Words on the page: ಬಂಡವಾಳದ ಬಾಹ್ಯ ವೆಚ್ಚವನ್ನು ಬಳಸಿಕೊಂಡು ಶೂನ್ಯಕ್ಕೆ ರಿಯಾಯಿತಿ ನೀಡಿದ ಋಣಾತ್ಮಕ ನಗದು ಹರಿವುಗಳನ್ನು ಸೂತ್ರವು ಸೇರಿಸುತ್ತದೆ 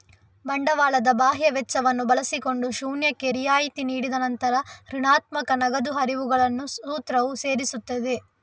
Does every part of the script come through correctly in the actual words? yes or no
no